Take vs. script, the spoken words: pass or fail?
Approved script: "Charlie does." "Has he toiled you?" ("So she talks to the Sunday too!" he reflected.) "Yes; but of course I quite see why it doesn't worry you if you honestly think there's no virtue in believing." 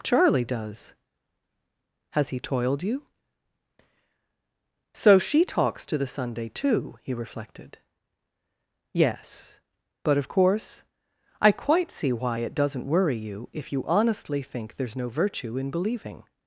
pass